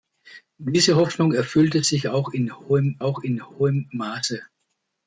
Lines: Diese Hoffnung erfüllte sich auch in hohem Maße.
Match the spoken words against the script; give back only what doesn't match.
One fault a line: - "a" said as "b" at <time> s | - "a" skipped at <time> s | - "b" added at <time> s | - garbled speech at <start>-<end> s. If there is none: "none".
- "auch in hohem" added at 3.0 s